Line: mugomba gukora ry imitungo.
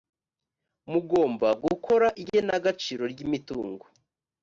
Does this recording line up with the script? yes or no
no